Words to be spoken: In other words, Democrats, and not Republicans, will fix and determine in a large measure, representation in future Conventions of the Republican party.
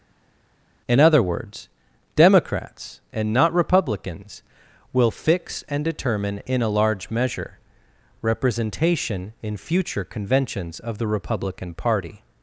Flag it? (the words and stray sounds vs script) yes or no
no